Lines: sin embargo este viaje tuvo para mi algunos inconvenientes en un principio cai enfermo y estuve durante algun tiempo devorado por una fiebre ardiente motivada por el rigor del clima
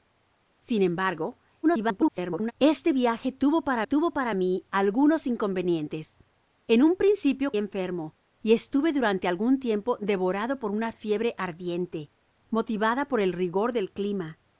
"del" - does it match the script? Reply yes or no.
yes